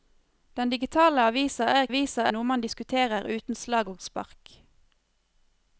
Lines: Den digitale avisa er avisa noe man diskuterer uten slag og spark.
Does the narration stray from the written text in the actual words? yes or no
no